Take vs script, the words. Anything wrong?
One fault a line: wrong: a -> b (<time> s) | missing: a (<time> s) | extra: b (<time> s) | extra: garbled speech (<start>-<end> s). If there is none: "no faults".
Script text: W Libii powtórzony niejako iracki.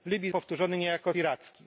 no faults